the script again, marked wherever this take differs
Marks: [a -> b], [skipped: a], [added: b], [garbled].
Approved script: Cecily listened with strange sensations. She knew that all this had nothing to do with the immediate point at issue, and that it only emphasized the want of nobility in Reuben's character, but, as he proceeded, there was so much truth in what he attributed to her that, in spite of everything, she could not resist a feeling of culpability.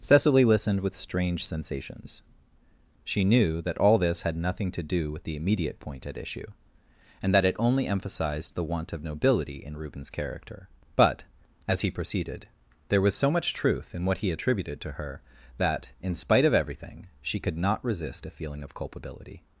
Cecily listened with strange sensations. She knew that all this had nothing to do with the immediate point at issue, and that it only emphasized the want of nobility in Reuben's character, but, as he proceeded, there was so much truth in what he attributed to her that, in spite of everything, she could not resist a feeling of culpability.